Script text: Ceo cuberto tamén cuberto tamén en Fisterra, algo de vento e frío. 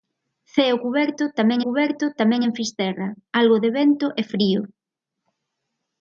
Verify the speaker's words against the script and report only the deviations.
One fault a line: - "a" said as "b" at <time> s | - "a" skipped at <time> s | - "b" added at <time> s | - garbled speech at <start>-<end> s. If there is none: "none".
none